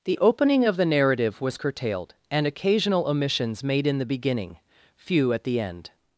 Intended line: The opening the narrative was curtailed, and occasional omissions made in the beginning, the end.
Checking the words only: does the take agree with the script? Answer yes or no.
no